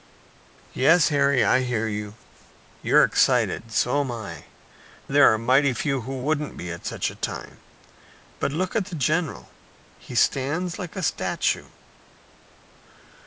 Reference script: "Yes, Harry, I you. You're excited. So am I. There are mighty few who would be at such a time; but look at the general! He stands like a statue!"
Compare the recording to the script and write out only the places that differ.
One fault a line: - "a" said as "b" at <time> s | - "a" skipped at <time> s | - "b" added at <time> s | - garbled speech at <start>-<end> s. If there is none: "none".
- "hear" added at 1.6 s
- "would" said as "wouldn't" at 6.2 s